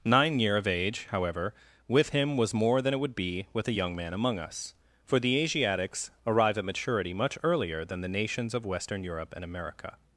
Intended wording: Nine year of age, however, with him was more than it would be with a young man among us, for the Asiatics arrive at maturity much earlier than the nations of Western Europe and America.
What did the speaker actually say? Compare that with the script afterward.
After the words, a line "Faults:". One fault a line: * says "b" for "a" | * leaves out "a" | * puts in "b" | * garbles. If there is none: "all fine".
Nine year of age, however, with him was more than it would be with a young man among us, for the Asiatics arrive at maturity much earlier than the nations of Western Europe and America.
Faults:
all fine